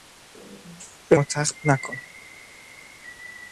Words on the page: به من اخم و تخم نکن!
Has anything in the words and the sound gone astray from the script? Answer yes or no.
yes